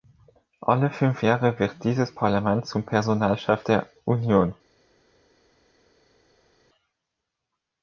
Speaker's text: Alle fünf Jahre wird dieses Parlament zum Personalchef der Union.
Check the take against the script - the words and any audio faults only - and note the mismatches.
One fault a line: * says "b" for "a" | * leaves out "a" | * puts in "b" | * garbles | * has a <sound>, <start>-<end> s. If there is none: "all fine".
all fine